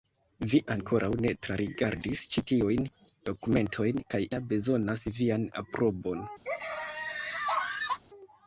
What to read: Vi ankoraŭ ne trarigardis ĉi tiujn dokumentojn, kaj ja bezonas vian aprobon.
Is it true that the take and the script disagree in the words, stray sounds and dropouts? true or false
true